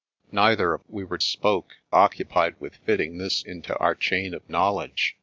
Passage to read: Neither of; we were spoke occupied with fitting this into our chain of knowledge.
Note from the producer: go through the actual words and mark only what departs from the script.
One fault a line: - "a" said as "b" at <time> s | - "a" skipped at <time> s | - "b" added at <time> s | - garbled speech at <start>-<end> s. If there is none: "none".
none